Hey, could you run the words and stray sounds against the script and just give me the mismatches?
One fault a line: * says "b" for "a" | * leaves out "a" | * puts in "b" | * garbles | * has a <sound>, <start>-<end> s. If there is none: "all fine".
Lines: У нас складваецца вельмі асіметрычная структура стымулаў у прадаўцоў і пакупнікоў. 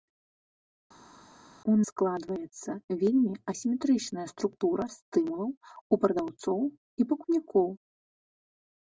* leaves out "нас"